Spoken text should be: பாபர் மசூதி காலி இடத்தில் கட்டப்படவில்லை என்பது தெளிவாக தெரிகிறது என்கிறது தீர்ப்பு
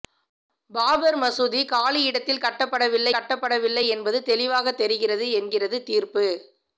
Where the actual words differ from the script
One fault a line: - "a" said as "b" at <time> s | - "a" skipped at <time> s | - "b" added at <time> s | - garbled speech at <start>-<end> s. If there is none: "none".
- "கட்டப்படவில்லை" added at 3.1 s